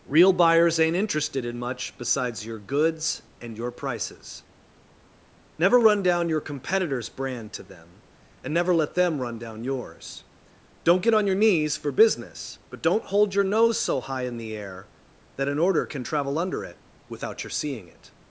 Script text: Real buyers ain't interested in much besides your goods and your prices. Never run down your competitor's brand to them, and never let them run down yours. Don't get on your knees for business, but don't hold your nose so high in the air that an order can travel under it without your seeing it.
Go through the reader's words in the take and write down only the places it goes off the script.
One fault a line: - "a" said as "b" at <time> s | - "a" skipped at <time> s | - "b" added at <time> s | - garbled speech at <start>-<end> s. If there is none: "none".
none